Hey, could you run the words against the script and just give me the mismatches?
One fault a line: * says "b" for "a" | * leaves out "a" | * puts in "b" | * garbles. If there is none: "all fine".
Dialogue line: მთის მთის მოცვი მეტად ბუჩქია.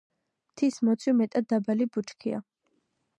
* leaves out "მთის"
* puts in "დაბალი"